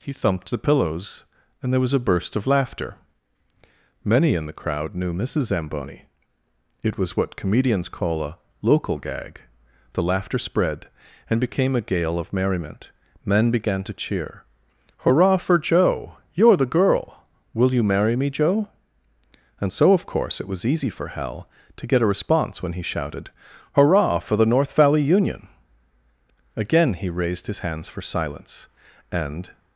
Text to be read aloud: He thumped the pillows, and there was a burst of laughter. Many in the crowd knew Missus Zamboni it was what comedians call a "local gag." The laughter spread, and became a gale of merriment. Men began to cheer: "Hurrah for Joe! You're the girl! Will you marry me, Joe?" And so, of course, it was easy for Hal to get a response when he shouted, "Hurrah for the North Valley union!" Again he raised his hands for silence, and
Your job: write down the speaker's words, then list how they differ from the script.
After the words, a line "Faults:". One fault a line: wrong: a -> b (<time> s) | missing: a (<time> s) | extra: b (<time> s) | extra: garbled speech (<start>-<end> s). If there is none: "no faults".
He thumped the pillows, and there was a burst of laughter. Many in the crowd knew Missus Zamboni it was what comedians call a "local gag." The laughter spread, and became a gale of merriment. Men began to cheer: "Hurrah for Joe! You're the girl! Will you marry me, Joe?" And so, of course, it was easy for Hal to get a response when he shouted, "Hurrah for the North Valley union!" Again he raised his hands for silence, and
Faults:
no faults